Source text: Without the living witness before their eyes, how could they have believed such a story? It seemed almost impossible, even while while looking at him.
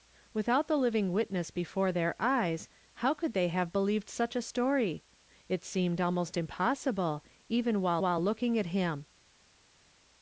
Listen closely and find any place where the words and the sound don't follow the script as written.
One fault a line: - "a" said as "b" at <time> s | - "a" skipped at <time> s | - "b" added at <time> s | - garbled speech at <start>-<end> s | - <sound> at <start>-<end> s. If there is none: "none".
none